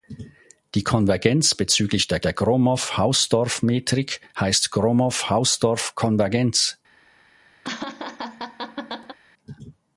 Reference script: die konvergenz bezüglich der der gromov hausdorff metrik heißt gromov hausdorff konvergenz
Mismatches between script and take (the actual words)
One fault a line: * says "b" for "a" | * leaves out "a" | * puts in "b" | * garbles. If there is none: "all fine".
all fine